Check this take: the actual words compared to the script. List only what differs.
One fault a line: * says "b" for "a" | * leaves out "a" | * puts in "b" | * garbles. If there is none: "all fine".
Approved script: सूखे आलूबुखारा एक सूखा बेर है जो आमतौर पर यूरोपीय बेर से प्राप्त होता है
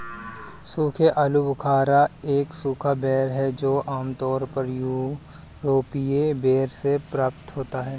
all fine